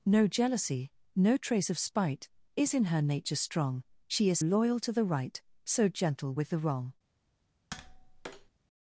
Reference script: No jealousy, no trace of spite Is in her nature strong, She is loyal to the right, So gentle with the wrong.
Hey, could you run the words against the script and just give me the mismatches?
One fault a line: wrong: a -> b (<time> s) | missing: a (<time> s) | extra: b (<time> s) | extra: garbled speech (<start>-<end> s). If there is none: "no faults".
no faults